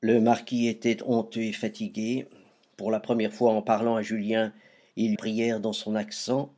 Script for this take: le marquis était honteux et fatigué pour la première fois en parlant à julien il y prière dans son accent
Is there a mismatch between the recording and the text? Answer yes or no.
no